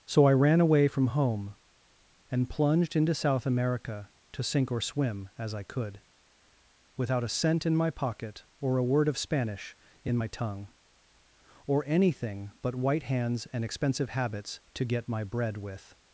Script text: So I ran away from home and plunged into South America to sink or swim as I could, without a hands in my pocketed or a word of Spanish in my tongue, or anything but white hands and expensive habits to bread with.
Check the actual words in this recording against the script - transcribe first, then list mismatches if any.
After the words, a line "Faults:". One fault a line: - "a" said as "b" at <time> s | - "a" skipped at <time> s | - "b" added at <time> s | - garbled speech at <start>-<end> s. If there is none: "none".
So I ran away from home and plunged into South America to sink or swim as I could, without a cent in my pocket or a word of Spanish in my tongue, or anything but white hands and expensive habits to get my bread with.
Faults:
- "hands" said as "cent" at 7.3 s
- "pocketed" said as "pocket" at 7.9 s
- "get my" added at 14.8 s